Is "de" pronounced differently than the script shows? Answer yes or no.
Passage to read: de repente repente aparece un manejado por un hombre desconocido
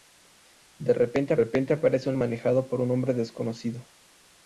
no